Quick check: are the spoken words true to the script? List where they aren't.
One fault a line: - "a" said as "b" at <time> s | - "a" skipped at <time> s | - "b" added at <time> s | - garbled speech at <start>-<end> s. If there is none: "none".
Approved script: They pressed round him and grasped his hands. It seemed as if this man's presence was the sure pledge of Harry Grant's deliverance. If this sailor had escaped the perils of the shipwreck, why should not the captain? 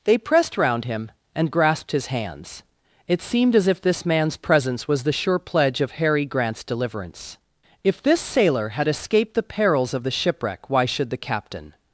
- "not" skipped at 11.1 s